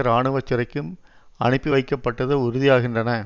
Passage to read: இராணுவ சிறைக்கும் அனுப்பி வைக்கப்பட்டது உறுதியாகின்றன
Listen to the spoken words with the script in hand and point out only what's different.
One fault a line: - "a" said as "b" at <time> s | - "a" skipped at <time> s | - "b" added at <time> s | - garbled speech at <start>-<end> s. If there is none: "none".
none